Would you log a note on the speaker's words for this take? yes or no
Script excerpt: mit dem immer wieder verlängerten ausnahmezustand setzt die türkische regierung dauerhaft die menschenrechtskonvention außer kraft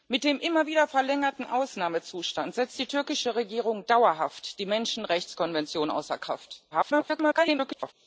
yes